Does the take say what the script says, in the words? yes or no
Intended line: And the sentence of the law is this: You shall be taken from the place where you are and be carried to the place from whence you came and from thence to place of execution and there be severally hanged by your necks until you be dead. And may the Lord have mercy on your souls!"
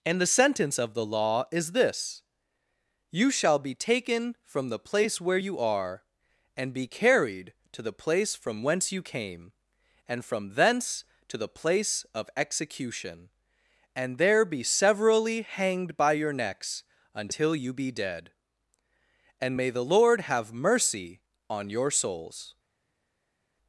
no